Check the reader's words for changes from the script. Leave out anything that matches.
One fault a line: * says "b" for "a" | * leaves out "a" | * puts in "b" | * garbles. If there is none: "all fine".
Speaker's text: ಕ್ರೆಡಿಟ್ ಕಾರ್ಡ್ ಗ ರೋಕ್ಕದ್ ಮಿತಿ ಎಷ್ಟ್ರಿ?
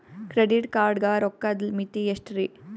all fine